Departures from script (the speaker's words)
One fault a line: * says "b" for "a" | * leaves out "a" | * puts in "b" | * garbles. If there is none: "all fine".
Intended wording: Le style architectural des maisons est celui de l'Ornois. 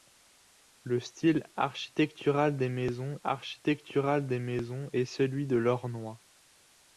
* puts in "architectural des maisons"